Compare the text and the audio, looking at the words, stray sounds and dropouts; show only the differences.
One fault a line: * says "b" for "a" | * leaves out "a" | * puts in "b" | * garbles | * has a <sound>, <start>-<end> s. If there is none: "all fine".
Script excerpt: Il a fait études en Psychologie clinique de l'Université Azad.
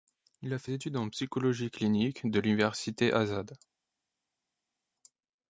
all fine